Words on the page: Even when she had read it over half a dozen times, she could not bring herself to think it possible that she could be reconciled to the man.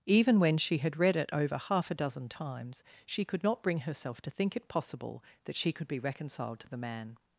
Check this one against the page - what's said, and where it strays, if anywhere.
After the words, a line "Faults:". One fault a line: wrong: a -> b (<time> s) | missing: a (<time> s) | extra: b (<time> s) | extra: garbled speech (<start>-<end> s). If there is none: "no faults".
Even when she had read it over half a dozen times, she could not bring herself to think it possible that she could be reconciled to the man.
Faults:
no faults